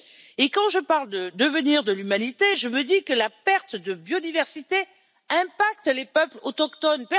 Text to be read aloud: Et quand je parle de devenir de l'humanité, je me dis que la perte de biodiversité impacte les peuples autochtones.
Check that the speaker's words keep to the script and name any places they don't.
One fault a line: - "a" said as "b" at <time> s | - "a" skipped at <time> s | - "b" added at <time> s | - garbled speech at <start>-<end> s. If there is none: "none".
none